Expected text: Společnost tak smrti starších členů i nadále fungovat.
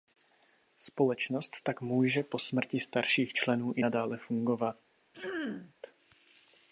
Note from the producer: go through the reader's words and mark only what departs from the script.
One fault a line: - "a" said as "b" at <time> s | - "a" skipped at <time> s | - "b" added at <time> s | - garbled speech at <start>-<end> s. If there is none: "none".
- "může po" added at 1.8 s